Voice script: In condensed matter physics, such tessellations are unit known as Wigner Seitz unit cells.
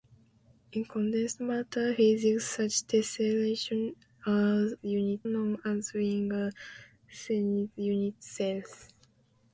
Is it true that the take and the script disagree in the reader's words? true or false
false